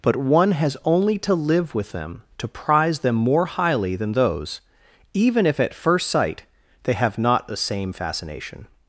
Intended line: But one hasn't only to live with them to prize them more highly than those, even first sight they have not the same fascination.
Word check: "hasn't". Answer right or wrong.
wrong